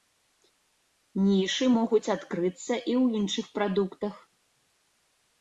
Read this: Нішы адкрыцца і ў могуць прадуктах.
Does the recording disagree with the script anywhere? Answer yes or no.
yes